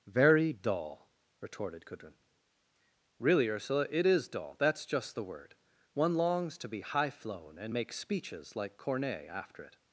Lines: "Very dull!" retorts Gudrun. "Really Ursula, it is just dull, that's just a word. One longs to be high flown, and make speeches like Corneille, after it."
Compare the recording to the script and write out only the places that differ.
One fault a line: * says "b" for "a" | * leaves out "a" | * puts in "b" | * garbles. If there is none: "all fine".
* says "retorted" for "retorts"
* leaves out "just"
* says "the" for "a"